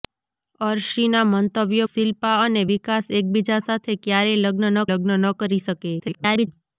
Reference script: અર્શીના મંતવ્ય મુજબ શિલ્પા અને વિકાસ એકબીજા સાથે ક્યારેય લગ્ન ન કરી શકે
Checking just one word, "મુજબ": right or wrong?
wrong